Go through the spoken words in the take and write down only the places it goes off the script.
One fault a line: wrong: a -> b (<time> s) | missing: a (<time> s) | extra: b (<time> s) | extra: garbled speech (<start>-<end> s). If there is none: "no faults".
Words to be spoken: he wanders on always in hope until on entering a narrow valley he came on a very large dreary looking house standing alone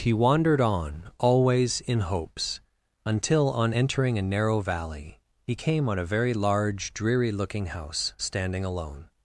wrong: wanders -> wandered (0.1 s)
wrong: hope -> hopes (2.0 s)